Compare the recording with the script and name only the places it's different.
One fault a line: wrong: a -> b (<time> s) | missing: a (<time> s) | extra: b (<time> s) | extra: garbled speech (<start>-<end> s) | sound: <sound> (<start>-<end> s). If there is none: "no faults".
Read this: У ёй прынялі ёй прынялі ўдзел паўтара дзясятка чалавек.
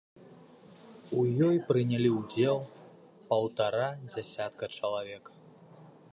missing: ёй прынялі (2.1 s)